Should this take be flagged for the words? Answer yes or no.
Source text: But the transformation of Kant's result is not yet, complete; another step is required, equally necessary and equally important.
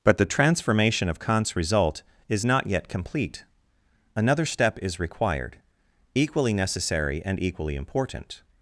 no